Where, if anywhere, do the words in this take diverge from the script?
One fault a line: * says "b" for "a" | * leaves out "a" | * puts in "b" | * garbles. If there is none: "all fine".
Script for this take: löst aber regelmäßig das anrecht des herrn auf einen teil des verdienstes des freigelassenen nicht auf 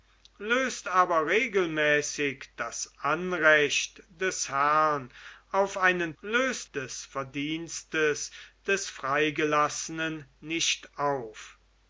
* says "löst" for "teil"